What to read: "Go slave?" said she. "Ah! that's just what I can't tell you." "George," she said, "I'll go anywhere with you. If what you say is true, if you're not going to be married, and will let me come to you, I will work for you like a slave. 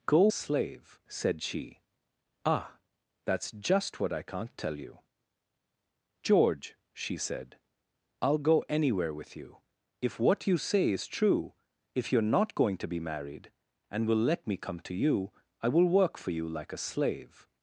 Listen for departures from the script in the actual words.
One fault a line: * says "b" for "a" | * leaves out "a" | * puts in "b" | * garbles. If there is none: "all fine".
all fine